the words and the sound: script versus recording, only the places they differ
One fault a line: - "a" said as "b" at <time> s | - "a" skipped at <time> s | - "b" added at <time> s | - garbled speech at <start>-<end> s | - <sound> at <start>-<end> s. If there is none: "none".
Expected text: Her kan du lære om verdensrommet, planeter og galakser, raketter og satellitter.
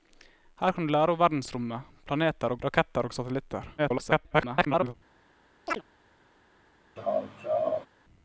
- "galakser" skipped at 2.6 s
- garbled speech at 3.8-4.9 s
- chirp at 5.7-5.8 s
- laugh at 7.0-7.9 s